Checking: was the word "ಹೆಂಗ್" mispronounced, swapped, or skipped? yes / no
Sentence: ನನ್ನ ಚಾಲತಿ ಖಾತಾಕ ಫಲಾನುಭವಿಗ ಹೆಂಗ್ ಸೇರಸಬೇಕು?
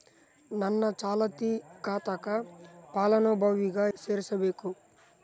yes